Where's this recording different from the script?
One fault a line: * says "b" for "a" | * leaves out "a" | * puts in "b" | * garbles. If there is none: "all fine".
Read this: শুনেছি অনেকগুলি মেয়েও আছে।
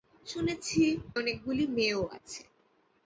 all fine